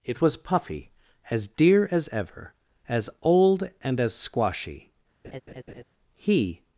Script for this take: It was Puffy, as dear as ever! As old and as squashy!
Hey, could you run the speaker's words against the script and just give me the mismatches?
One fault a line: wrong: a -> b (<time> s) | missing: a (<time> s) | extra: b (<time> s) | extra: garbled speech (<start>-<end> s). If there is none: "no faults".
extra: He (6.1 s)